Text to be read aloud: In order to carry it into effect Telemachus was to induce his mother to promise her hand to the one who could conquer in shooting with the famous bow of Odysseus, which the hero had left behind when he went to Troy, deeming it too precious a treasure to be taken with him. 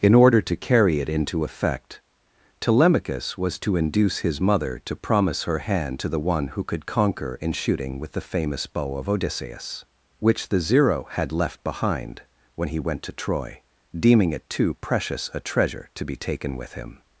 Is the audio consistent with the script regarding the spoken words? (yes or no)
no